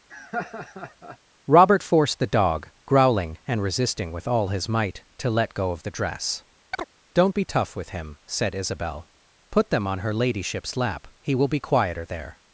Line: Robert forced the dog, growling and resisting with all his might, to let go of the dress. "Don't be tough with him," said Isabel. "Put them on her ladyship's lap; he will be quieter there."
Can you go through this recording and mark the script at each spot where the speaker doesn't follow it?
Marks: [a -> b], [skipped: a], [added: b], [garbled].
Robert forced the dog, growling and resisting with all his might, to let go of the dress. "Don't be tough with him," said Isabel. "Put them on her ladyship's lap; he will be quieter there."